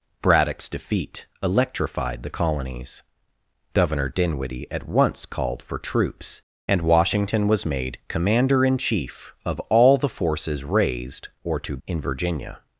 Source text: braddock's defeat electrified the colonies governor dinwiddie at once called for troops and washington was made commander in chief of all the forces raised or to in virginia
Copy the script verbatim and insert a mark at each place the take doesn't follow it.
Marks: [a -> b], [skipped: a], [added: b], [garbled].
braddock's defeat electrified the colonies governor dinwiddie at once called for troops and washington was made commander in chief of all the forces raised or to in virginia